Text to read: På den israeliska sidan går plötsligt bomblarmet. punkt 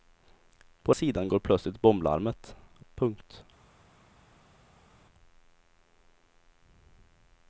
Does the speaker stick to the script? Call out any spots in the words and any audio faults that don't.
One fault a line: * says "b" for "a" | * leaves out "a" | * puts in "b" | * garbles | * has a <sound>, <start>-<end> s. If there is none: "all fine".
* leaves out "den israeliska"